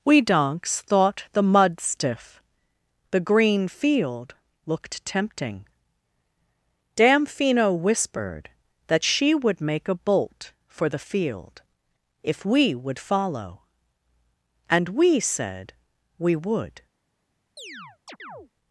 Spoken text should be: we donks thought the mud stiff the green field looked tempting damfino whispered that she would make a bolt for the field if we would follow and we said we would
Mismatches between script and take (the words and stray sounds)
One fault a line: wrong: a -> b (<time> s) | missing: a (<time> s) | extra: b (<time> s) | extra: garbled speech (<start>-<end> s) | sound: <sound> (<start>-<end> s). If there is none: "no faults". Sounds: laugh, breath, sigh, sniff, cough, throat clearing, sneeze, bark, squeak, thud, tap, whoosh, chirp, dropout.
sound: chirp (17.6-18.5 s)